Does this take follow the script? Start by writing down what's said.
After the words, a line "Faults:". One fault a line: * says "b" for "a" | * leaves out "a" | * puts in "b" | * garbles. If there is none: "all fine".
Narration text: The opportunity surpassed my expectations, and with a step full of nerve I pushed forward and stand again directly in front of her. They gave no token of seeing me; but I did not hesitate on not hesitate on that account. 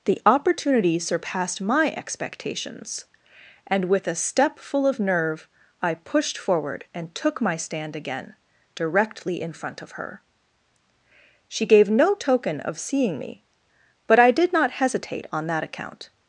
The opportunity surpassed my expectations, and with a step full of nerve I pushed forward and took my stand again directly in front of her. She gave no token of seeing me; but I did not hesitate on that account.
Faults:
* puts in "took my"
* says "She" for "They"
* leaves out "not hesitate on"